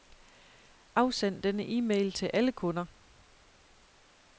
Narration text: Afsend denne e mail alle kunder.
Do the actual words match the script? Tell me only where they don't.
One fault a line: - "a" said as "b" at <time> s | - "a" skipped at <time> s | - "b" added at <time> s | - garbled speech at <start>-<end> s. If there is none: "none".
- "til" added at 2.1 s